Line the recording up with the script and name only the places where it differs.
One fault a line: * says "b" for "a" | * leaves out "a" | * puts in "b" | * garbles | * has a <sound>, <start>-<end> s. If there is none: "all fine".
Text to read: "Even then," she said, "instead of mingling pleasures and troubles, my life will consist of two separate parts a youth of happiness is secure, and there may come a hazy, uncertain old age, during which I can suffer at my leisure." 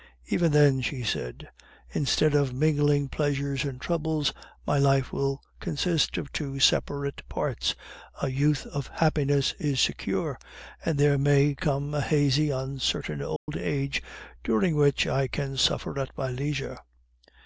* has a dropout, 13.4-13.5 s